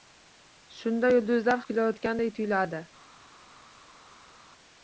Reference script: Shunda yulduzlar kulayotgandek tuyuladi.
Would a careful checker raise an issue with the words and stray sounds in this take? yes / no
no